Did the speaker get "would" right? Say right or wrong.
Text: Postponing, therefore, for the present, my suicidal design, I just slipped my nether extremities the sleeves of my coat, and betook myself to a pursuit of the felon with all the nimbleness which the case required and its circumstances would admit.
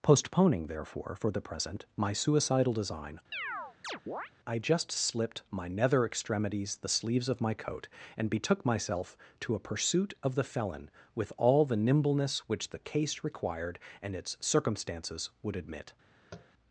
right